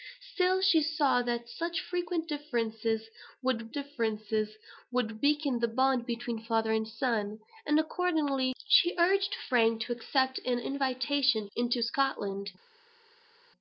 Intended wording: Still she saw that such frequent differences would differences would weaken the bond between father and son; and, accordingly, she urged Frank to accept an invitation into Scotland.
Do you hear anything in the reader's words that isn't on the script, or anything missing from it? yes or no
no